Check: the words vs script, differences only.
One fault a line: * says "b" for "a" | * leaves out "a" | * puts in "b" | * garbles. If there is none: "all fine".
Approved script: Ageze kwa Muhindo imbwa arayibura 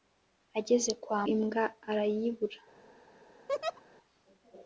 * leaves out "Muhindo"